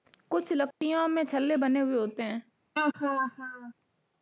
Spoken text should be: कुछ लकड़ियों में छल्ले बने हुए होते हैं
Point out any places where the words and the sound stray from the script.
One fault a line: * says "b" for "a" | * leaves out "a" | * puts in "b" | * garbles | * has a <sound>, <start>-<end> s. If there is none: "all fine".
* has a dropout, 0.7-0.8 s
* has a laugh, 2.8-3.7 s